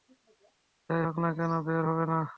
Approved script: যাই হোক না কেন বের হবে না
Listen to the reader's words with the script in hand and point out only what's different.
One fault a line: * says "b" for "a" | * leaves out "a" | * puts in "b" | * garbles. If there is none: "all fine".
all fine